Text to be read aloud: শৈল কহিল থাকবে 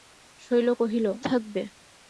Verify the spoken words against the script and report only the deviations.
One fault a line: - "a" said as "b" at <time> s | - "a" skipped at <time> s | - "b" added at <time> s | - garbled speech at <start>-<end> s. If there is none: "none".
none